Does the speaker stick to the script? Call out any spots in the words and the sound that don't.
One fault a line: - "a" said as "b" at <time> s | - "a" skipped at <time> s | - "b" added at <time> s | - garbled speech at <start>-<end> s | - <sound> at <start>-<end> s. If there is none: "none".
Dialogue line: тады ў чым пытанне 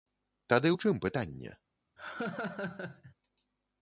- laugh at 2.0-3.1 s